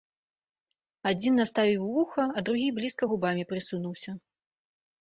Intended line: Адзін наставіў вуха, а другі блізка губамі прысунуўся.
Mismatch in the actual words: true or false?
false